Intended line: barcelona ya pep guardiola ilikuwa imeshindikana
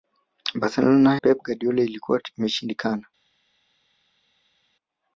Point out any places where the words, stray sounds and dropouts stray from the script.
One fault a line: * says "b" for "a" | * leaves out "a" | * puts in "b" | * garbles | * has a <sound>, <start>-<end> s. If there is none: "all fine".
* leaves out "ya"